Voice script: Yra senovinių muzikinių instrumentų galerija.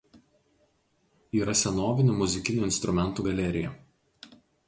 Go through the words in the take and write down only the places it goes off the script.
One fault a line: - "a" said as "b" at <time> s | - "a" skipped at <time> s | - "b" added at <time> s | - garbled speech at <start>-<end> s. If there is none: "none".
none